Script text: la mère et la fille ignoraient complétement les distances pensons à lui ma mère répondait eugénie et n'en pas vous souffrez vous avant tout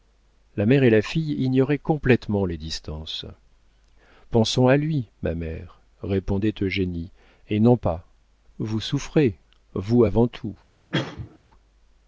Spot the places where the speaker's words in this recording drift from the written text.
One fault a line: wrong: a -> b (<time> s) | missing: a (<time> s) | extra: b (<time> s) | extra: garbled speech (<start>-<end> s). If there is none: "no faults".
no faults